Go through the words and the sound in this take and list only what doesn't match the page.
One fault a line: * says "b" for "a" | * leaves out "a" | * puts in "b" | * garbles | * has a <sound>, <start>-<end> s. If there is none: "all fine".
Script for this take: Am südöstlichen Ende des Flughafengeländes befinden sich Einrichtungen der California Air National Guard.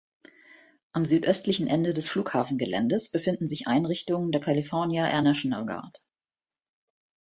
all fine